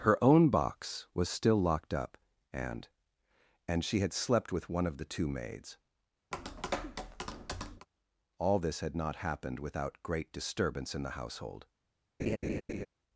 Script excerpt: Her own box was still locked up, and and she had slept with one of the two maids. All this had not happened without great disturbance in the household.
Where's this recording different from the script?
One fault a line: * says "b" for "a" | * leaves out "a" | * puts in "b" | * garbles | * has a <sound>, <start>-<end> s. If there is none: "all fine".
* has a tap, 6.3-7.9 s
* has a laugh, 12.2-12.9 s